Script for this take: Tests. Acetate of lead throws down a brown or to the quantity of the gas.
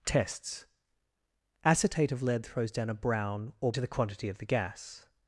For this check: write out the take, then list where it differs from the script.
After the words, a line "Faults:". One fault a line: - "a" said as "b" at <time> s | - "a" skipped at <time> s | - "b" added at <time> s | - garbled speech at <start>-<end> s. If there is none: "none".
Tests. Acetate of lead throws down a brown or to the quantity of the gas.
Faults:
none